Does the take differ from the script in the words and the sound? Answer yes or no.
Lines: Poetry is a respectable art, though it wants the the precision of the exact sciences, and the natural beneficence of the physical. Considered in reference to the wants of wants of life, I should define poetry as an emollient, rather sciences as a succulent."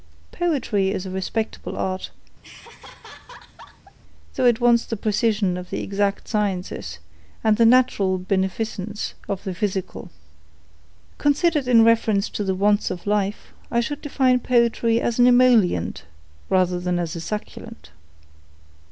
yes